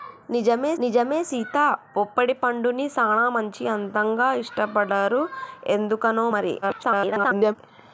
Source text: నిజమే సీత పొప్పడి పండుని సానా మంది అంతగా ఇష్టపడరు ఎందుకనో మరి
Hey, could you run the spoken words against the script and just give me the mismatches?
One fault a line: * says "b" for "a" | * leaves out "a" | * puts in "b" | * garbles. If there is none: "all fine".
* puts in "నిజమే"
* garbles